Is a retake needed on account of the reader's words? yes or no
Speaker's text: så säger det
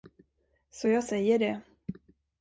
yes